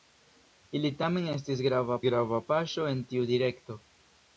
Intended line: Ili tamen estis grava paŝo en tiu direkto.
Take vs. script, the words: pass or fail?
fail